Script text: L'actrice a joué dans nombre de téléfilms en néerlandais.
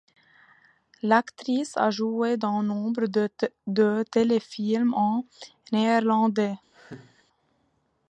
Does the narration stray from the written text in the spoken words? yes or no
no